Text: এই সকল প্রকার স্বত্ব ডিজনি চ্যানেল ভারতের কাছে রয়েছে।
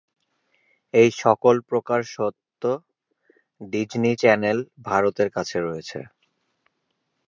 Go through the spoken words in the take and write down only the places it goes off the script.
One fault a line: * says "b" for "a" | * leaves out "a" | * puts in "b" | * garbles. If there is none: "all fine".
all fine